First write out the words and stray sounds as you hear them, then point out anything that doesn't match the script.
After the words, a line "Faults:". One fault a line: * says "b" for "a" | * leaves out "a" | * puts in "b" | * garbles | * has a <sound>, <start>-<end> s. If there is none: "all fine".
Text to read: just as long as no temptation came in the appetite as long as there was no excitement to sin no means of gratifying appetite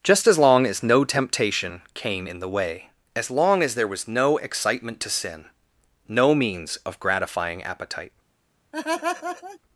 just as long as no temptation came in the way as long as there was no excitement to sin no means of gratifying appetite
Faults:
* says "way" for "appetite"
* has a laugh, 8.7-9.6 s